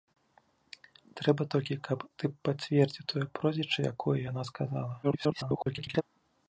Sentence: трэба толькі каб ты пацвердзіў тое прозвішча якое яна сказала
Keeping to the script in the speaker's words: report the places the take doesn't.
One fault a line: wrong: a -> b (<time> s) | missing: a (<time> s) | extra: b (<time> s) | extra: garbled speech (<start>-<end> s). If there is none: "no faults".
extra: garbled speech (5.0-6.0 s)